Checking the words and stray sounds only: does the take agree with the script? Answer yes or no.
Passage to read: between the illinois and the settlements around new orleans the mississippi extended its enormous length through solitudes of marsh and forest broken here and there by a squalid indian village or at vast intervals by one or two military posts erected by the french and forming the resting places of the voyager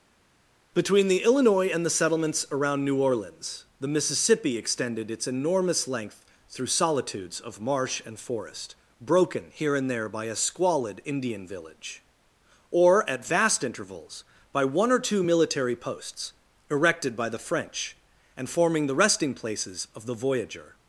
yes